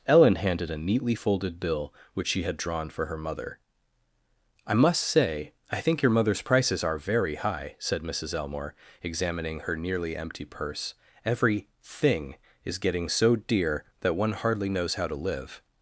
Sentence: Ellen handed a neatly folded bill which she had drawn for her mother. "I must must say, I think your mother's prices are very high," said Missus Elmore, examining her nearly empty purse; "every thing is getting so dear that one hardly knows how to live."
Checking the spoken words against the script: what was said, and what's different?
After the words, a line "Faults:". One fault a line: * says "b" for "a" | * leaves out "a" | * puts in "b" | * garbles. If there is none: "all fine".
Ellen handed a neatly folded bill which she had drawn for her mother. "I must say, I think your mother's prices are very high," said Missus Elmore, examining her nearly empty purse; "every thing is getting so dear that one hardly knows how to live."
Faults:
* leaves out "must"